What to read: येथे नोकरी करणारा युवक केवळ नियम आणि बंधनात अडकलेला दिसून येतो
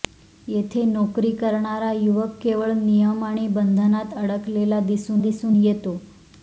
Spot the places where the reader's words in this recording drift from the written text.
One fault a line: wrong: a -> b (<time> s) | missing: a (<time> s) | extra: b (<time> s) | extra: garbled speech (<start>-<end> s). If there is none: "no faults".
extra: दिसून (5.2 s)